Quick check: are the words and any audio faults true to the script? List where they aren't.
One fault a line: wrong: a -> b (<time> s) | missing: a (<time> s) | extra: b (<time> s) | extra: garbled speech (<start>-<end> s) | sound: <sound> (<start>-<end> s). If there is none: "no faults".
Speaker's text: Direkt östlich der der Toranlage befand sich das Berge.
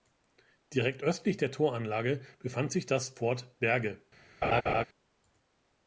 missing: der (1.5 s)
extra: Fort (3.1 s)
sound: laugh (4.4-4.8 s)